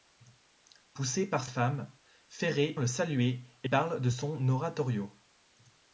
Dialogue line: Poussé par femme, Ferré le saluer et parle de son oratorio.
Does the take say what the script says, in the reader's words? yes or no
yes